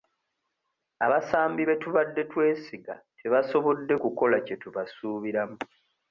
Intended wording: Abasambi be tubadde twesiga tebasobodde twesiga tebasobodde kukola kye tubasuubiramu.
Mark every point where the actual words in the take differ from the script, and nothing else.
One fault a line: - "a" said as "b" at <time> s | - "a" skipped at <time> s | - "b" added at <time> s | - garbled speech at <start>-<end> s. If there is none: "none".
- "twesiga tebasobodde" skipped at 3.9 s